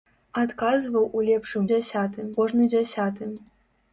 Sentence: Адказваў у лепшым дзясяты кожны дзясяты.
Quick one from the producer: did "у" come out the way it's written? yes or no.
yes